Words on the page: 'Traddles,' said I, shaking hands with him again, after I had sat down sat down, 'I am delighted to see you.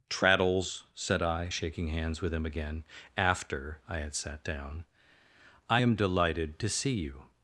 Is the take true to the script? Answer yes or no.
no